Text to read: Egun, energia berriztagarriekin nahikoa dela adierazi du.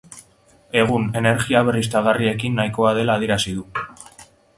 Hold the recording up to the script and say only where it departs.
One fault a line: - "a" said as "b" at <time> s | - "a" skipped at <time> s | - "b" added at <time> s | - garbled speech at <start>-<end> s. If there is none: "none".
none